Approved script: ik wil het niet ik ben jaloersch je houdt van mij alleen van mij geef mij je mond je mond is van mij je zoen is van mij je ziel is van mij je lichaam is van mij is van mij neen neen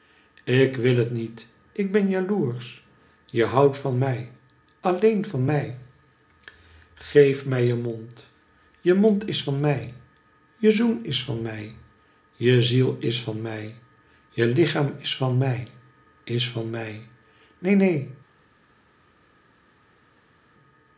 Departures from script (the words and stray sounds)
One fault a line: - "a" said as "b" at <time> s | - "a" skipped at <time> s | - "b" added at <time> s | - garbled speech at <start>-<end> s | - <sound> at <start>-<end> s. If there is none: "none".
none